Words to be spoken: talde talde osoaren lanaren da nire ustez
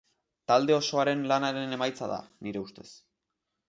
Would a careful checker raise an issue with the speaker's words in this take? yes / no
yes